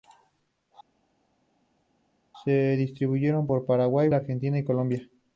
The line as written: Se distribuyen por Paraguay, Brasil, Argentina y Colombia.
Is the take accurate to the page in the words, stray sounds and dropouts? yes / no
no